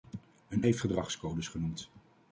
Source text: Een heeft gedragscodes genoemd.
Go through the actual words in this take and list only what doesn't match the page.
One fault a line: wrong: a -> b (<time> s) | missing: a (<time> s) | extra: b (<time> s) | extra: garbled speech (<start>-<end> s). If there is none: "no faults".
no faults